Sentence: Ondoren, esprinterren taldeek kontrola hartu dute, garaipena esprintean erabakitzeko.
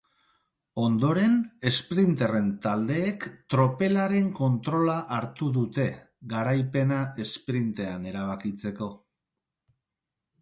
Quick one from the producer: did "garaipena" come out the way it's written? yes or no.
yes